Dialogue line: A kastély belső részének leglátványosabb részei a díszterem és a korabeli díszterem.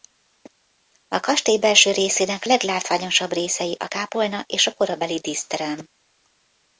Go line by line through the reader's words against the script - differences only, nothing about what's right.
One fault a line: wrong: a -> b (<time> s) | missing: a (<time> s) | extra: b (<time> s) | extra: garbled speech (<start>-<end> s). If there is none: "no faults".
wrong: díszterem -> kápolna (3.9 s)